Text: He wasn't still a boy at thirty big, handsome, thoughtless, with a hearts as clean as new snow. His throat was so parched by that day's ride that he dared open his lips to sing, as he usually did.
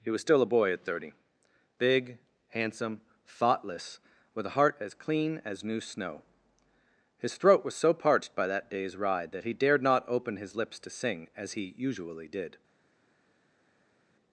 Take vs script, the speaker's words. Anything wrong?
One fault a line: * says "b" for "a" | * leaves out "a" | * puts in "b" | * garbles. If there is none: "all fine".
* says "was" for "wasn't"
* says "heart" for "hearts"
* puts in "not"